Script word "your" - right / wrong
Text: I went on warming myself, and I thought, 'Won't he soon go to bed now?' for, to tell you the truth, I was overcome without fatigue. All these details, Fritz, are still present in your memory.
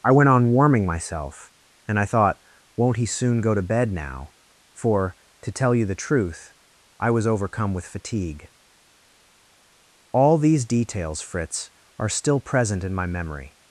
wrong